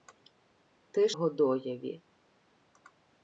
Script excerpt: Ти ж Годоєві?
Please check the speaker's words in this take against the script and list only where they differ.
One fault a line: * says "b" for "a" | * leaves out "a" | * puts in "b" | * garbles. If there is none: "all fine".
all fine